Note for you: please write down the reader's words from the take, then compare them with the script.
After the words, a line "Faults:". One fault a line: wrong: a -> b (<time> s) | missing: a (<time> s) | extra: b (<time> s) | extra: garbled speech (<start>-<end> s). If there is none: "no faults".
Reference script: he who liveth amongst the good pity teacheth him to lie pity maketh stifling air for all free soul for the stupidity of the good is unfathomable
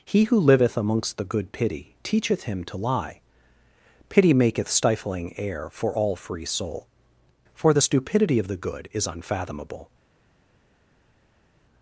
he who liveth amongst the good pity teacheth him to lie pity maketh stifling air for all free soul for the stupidity of the good is unfathomable
Faults:
no faults